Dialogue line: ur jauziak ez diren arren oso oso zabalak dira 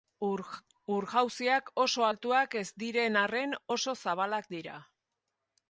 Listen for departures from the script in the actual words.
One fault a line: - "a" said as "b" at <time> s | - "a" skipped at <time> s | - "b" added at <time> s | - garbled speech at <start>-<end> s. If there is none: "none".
- "oso altuak" added at 1.9 s
- "oso" skipped at 4.0 s